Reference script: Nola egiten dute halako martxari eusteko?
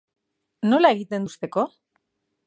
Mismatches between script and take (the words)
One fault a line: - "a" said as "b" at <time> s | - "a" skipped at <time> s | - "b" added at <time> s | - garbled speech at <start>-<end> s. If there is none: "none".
- "dute halako martxari" skipped at 1.3 s